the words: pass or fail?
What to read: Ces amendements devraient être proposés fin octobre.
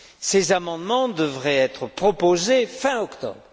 pass